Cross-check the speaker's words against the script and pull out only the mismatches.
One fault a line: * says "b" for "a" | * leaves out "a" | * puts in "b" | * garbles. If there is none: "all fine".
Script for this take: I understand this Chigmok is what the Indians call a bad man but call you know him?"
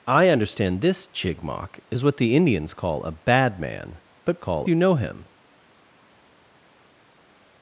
all fine